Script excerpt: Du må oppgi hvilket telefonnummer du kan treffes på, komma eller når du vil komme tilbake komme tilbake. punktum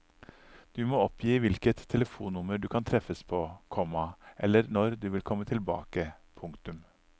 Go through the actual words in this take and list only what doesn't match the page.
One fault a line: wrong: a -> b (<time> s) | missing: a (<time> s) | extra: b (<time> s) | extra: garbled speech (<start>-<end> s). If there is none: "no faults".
missing: komme tilbake (6.1 s)